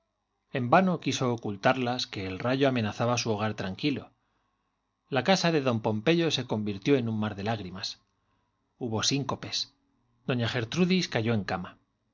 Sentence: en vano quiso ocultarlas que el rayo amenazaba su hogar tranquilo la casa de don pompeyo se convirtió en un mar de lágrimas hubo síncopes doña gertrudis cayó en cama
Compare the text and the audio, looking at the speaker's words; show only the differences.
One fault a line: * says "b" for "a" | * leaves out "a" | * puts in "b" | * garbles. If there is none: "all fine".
all fine